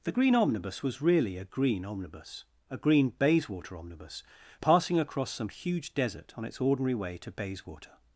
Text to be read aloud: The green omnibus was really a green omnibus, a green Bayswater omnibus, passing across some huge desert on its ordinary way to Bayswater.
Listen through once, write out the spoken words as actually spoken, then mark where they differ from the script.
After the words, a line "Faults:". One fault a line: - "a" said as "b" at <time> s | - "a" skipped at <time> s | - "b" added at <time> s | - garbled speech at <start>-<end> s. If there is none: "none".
The green omnibus was really a green omnibus, a green Bayswater omnibus, passing across some huge desert on its ordinary way to Bayswater.
Faults:
none